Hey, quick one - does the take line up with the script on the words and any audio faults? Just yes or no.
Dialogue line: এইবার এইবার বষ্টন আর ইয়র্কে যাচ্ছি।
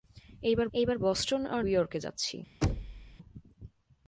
no